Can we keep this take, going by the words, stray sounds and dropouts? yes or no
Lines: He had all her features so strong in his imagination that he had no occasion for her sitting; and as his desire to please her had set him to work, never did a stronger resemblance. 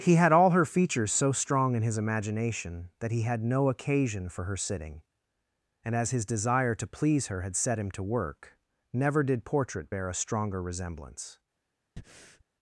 no